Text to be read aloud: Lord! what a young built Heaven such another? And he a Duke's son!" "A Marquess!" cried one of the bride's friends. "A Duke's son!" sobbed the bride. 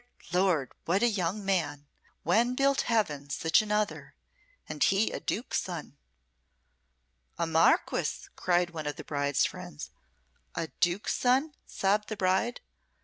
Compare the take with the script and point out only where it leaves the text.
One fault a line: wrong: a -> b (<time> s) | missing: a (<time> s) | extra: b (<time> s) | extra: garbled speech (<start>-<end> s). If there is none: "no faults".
extra: man When (1.4 s)